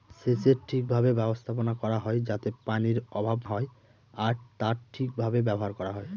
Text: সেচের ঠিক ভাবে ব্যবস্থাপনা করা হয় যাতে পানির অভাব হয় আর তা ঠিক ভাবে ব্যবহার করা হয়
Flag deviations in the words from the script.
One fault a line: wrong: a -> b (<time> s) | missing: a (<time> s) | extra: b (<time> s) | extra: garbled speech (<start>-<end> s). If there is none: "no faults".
no faults